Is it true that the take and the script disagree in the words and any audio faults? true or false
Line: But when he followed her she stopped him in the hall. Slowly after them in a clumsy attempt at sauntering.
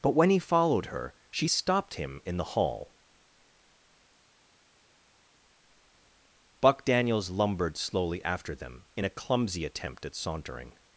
true